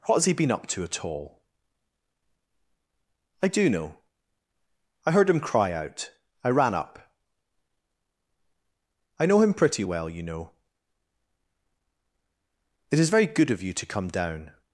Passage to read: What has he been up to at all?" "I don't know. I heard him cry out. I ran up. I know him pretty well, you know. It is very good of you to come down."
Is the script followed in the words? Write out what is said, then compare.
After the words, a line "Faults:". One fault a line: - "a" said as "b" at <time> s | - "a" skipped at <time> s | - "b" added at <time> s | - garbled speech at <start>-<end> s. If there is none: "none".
What has he been up to at all?" "I do know. I heard him cry out. I ran up. I know him pretty well, you know. It is very good of you to come down."
Faults:
- "don't" said as "do" at 3.5 s